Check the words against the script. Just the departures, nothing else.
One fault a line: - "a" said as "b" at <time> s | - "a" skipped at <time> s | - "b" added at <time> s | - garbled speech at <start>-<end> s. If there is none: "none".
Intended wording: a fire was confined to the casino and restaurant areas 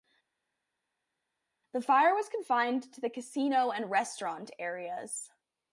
- "a" said as "the" at 1.7 s